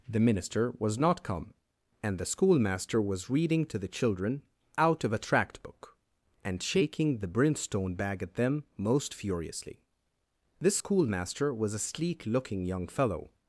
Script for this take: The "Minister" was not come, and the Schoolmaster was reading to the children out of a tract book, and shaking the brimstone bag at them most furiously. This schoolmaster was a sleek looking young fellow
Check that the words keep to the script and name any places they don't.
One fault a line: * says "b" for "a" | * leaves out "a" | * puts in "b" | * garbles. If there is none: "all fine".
all fine